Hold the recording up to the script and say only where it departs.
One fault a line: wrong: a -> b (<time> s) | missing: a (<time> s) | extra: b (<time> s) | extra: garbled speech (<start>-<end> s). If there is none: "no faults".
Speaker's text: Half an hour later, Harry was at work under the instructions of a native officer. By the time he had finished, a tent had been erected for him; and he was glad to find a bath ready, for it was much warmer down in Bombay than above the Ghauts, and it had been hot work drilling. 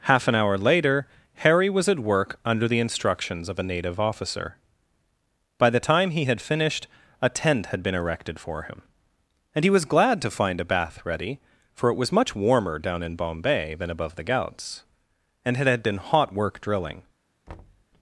no faults